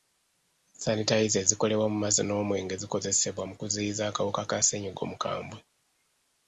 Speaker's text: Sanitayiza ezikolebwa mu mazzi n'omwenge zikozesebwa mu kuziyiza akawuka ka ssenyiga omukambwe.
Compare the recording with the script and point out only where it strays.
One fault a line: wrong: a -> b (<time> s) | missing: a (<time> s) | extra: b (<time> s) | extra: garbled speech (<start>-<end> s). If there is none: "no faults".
no faults